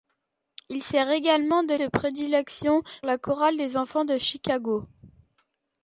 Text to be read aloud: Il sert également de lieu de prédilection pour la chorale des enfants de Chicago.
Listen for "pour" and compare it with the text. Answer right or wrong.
wrong